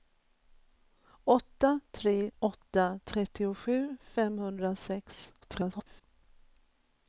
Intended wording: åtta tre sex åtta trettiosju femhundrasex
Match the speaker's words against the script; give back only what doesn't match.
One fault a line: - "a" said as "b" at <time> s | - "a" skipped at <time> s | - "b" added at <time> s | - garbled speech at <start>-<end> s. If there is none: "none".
- "sex" skipped at 2.3 s
- garbled speech at 5.4-6.0 s